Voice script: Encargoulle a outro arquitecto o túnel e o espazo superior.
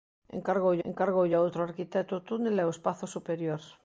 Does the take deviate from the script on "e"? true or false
false